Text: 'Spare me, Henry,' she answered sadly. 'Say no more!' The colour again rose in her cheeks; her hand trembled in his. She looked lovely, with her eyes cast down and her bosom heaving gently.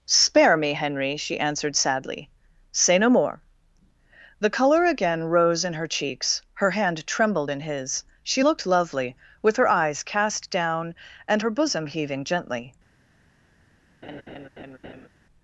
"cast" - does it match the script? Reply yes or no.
yes